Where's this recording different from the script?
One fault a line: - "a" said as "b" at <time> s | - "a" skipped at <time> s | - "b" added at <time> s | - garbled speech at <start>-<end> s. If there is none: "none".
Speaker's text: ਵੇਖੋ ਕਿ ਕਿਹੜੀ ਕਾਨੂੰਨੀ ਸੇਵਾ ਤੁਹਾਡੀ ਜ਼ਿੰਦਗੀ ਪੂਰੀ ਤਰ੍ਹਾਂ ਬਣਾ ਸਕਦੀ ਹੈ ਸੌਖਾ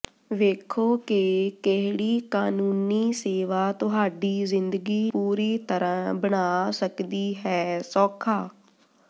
none